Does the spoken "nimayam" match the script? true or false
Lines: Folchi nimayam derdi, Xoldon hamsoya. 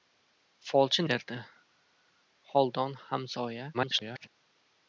false